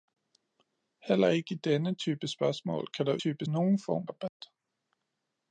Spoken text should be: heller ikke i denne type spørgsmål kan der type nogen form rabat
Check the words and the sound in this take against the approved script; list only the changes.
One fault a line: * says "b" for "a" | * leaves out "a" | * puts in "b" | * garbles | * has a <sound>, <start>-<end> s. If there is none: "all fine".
* has a dropout, 4.3-4.4 s